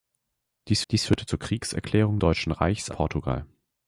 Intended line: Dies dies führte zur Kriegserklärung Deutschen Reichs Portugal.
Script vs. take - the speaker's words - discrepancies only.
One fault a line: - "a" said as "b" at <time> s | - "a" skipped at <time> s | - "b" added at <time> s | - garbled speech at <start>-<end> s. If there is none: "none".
none